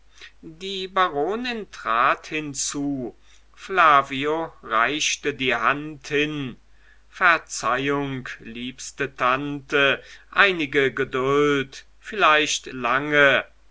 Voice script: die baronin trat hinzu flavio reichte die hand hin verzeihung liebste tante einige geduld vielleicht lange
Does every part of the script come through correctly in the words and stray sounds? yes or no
yes